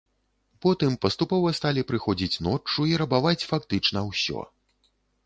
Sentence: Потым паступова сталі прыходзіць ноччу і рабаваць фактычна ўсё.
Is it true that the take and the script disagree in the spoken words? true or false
false